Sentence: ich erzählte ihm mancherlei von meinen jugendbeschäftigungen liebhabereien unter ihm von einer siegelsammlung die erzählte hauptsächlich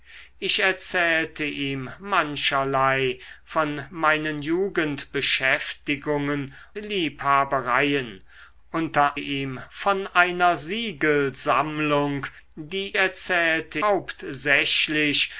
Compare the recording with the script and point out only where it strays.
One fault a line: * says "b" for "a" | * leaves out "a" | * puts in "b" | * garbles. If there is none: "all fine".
all fine